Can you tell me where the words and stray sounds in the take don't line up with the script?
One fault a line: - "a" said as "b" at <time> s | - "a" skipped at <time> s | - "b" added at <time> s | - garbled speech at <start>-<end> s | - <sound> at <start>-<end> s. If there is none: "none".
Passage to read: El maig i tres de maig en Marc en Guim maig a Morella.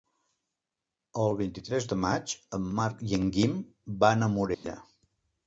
- "maig" said as "vint" at 1.4 s
- "i" added at 3.1 s
- "maig" said as "van" at 4.1 s
- dropout at 4.5-4.6 s